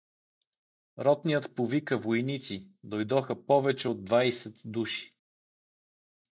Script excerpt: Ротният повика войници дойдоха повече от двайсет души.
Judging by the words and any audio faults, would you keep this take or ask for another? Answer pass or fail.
pass